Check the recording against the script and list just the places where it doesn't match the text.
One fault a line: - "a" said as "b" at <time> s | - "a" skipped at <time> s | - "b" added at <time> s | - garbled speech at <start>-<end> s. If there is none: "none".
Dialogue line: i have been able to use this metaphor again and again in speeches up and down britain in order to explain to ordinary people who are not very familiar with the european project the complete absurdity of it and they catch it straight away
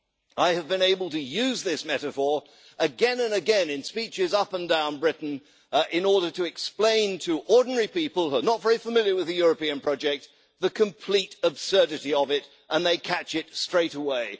none